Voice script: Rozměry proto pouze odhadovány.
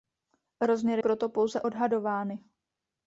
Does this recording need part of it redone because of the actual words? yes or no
no